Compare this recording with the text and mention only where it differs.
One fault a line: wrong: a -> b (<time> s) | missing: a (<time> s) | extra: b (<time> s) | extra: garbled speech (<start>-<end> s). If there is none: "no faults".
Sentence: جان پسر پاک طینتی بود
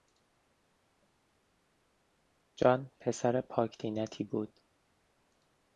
no faults